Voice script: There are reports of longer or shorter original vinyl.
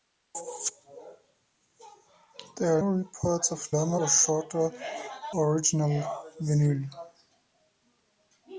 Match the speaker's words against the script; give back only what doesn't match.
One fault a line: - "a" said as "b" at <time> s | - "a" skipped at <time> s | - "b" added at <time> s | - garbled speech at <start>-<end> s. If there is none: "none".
none